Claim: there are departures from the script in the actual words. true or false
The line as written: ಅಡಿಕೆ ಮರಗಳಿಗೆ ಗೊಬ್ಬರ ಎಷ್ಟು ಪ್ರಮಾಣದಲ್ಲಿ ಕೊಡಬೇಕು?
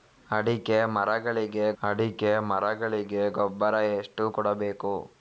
true